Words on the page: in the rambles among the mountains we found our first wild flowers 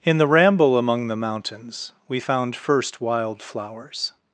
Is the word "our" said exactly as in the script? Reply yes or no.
no